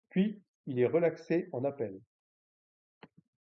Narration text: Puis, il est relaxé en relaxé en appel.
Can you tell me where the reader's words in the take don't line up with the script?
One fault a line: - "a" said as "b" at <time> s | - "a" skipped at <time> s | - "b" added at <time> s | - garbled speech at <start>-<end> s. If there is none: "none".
- "relaxé en" skipped at 1.6 s